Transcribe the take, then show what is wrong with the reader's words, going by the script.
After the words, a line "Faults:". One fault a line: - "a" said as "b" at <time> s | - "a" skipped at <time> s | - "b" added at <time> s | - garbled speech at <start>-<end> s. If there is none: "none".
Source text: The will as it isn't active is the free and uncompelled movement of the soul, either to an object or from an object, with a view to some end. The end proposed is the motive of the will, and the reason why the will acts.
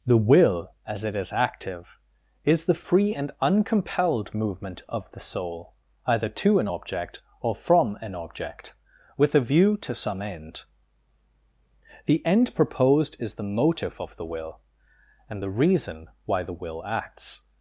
The will as it is active is the free and uncompelled movement of the soul, either to an object or from an object, with a view to some end. The end proposed is the motive of the will, and the reason why the will acts.
Faults:
- "isn't" said as "is" at 1.1 s